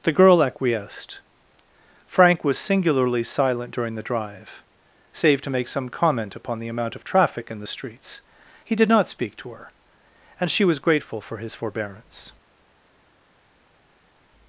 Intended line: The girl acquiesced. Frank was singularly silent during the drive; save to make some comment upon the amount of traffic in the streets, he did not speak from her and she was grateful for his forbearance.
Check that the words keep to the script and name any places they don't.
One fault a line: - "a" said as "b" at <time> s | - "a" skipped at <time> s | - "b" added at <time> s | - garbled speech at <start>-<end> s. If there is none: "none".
- "from" said as "to" at 9.4 s